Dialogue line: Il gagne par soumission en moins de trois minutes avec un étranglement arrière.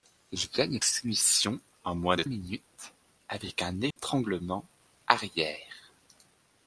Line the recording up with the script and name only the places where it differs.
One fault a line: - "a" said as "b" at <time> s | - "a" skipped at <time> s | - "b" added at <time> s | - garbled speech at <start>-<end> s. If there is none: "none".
- "par" skipped at 0.8 s
- "trois" skipped at 2.2 s